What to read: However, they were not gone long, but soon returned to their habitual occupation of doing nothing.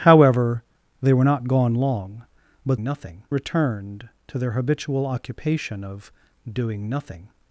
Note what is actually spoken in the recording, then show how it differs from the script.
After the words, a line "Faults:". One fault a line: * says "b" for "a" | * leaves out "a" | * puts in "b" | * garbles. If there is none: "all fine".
However, they were not gone long, but nothing returned to their habitual occupation of doing nothing.
Faults:
* says "nothing" for "soon"